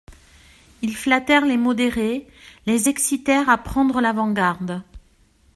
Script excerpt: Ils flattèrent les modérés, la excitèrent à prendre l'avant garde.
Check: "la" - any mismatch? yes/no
yes